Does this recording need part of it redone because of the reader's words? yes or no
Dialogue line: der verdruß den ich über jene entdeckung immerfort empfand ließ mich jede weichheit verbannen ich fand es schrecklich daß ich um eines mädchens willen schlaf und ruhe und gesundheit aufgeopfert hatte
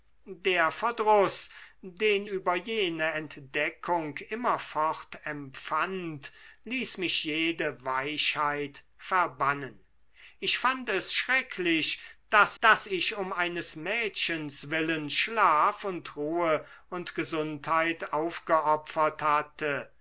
yes